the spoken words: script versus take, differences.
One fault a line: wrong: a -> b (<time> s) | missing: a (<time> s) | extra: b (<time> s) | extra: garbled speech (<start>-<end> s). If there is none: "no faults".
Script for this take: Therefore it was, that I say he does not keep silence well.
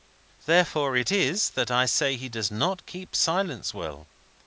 wrong: was -> is (1.1 s)